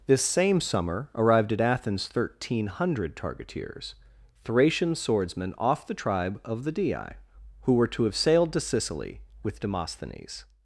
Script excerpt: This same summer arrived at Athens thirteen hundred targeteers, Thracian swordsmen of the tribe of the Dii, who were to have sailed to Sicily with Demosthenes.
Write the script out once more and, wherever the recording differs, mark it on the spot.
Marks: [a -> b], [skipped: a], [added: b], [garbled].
This same summer arrived at Athens thirteen hundred targeteers, Thracian swordsmen [of -> off] the tribe of the Dii, who were to have sailed to Sicily with Demosthenes.